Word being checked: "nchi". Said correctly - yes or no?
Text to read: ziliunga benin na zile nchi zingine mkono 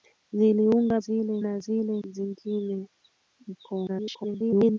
no